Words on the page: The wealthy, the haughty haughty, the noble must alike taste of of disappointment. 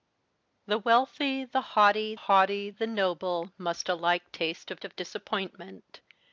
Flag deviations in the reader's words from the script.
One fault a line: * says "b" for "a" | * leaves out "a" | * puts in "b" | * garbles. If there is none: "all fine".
all fine